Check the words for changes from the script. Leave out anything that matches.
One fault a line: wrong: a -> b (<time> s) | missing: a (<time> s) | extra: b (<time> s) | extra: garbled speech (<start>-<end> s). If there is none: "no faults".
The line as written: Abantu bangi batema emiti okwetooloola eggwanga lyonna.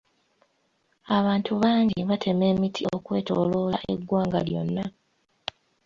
no faults